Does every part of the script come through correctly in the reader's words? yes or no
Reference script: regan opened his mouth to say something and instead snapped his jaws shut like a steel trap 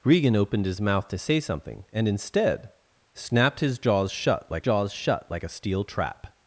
no